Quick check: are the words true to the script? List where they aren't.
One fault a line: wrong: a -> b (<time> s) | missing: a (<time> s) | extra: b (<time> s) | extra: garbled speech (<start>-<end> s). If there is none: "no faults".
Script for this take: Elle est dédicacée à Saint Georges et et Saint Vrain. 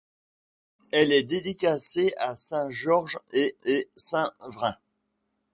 no faults